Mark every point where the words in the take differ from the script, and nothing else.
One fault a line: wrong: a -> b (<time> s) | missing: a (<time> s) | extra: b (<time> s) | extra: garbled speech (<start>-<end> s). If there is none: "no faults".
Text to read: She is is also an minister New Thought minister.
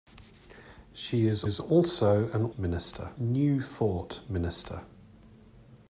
no faults